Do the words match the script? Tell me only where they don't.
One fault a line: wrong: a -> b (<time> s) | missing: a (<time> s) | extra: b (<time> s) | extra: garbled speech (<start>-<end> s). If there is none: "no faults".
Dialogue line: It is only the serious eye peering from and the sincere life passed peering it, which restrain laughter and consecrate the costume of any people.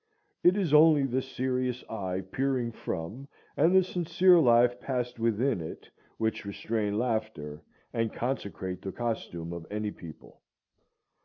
wrong: peering -> within (5.2 s)